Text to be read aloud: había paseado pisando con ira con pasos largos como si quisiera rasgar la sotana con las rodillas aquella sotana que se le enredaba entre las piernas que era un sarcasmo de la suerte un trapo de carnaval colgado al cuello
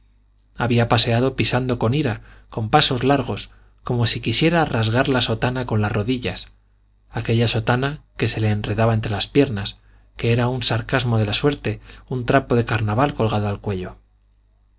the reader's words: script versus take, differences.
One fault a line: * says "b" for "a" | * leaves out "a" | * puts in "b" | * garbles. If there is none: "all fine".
all fine